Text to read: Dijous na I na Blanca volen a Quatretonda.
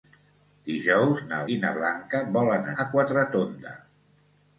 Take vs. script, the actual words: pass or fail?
pass